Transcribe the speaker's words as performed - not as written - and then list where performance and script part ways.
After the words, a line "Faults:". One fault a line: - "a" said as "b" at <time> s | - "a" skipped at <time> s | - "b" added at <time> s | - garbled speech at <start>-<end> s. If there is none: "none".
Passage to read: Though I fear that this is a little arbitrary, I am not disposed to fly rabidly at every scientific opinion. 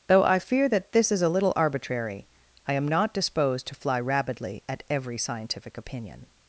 Though I fear that this is a little arbitrary, I am not disposed to fly rabidly at every scientific opinion.
Faults:
none